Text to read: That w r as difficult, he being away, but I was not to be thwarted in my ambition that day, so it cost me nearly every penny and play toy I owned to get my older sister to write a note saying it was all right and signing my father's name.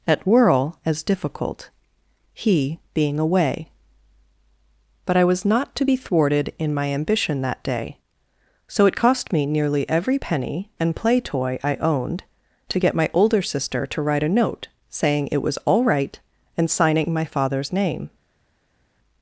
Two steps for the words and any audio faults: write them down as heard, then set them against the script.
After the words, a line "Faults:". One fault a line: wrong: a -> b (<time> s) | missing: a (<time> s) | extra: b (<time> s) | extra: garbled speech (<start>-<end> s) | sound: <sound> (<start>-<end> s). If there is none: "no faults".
At whirl as difficult, he being away, but I was not to be thwarted in my ambition that day, so it cost me nearly every penny and play toy I owned to get my older sister to write a note saying it was all right and signing my father's name.
Faults:
wrong: That w r -> At whirl (0.1 s)